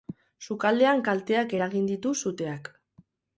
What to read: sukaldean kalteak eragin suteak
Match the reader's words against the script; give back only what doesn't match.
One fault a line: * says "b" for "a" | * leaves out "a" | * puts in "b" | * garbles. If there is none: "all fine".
* puts in "ditu"